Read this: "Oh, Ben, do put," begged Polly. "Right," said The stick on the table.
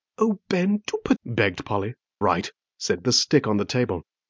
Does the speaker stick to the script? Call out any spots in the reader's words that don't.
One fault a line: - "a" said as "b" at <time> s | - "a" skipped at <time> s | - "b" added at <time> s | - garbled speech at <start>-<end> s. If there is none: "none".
none